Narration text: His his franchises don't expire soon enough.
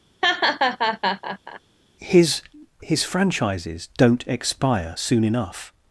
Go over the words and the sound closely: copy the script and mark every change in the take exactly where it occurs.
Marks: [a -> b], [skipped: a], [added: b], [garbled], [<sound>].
[laugh] His his franchises don't expire soon enough.